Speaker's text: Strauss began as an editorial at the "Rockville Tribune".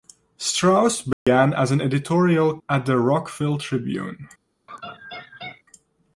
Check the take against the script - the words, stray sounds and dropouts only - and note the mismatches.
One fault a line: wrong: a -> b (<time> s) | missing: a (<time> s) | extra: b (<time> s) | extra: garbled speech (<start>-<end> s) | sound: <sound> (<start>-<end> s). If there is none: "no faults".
sound: dropout (1.1-1.3 s)
sound: laugh (4.7-5.6 s)